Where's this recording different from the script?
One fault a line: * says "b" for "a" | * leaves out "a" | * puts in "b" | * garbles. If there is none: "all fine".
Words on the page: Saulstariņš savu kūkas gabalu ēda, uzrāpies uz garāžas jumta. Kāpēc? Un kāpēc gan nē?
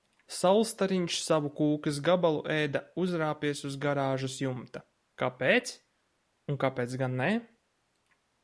all fine